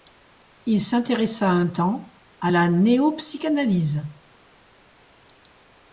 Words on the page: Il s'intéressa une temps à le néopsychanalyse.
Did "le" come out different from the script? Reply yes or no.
yes